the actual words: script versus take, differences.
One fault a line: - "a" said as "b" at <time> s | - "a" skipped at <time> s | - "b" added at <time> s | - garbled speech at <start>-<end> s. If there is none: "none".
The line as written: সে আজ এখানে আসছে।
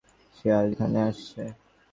none